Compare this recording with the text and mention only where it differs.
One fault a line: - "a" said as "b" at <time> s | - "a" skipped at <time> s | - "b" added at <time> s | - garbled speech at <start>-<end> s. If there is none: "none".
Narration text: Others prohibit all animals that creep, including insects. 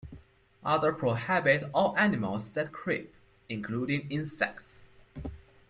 none